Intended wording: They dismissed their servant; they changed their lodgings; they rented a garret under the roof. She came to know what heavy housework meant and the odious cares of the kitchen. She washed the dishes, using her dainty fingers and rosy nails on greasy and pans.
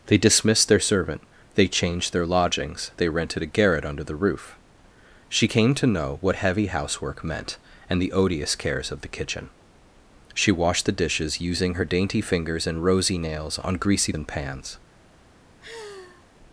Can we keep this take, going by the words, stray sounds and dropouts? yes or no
no